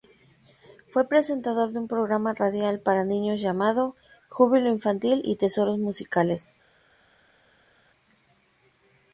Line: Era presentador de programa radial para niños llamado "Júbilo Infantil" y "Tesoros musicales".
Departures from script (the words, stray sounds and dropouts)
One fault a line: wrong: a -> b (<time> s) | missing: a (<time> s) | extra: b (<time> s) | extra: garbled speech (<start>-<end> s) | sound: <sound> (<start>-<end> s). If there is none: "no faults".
wrong: Era -> Fue (0.9 s)
extra: un (1.8 s)